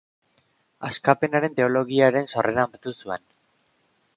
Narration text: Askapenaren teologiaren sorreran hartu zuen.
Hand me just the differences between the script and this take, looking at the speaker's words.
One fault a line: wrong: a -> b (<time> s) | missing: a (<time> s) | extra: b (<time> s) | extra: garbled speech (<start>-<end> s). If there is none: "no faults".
no faults